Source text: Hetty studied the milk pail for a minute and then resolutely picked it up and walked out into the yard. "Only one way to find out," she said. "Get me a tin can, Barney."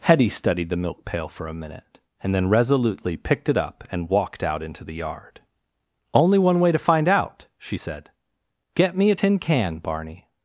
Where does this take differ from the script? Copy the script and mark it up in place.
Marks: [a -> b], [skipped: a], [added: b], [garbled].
Hetty studied the milk pail for a minute and then resolutely picked it up and walked out into the yard. "Only one way to find out," she said. "Get me a tin can, Barney."